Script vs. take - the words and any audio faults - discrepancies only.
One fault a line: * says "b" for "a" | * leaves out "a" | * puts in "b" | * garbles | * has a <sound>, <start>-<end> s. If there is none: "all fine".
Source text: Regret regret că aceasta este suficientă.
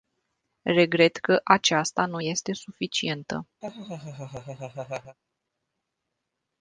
* leaves out "regret"
* puts in "nu"
* has a laugh, 3.6-5.2 s